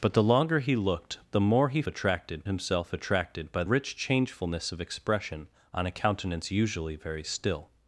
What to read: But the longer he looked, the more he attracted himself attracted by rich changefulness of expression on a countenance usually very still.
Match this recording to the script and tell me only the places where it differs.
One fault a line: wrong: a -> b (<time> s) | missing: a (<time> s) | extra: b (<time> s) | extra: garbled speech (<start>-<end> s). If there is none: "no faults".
no faults